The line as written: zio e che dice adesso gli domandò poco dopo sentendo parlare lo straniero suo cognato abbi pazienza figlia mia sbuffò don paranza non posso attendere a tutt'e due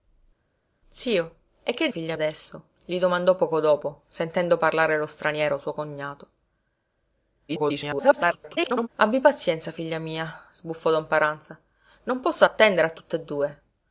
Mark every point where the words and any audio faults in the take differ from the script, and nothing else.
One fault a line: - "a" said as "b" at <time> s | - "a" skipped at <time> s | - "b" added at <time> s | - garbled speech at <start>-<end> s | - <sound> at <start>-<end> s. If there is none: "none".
- "dice" said as "figlia" at 1.9 s
- garbled speech at 7.5-8.9 s